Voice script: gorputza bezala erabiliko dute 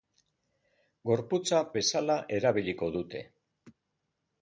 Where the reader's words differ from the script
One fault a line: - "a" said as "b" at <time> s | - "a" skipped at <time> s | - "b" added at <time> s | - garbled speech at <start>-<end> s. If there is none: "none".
none